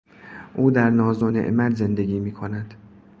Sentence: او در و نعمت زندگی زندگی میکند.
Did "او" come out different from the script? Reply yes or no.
no